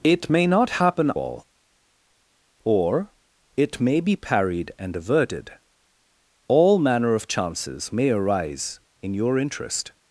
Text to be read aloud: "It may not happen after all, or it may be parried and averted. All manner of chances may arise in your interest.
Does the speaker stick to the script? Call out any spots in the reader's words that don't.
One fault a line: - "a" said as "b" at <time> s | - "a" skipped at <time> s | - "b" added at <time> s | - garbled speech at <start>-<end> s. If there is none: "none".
- "after" skipped at 1.1 s